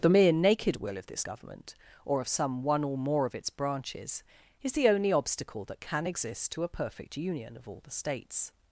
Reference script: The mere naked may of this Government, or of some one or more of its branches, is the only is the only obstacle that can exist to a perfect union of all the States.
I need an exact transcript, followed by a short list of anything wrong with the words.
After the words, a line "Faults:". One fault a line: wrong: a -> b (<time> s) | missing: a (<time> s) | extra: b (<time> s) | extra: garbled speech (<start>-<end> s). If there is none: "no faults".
The mere naked will of this Government, or of some one or more of its branches, is the only obstacle that can exist to a perfect union of all the States.
Faults:
wrong: may -> will (0.8 s)
missing: is the only (5.1 s)